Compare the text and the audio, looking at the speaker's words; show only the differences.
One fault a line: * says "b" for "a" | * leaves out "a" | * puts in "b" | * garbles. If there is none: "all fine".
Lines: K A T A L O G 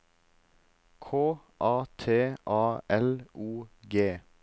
all fine